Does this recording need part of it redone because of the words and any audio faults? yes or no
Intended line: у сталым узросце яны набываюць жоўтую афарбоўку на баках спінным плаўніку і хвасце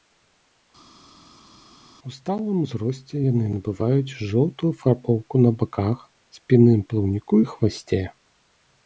no